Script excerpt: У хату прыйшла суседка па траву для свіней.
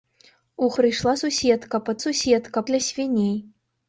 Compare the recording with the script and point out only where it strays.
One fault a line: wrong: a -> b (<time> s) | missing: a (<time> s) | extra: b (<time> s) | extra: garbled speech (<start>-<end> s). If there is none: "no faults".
missing: хату (0.7 s)
wrong: траву -> суседка (2.0 s)